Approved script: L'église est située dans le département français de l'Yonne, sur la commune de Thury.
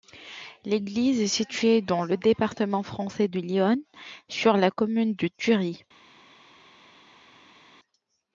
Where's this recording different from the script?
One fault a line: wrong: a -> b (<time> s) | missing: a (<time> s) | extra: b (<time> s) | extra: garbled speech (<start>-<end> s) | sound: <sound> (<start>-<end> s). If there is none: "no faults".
no faults